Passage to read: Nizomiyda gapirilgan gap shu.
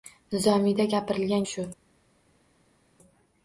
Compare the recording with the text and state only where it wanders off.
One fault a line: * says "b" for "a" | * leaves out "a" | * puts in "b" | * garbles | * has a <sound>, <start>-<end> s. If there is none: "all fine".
* leaves out "gap"